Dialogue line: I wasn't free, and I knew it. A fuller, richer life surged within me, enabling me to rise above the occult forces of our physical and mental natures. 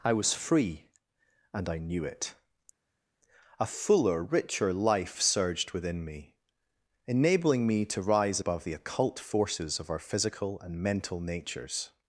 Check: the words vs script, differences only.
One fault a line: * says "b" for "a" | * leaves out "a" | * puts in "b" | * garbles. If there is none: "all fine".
* says "was" for "wasn't"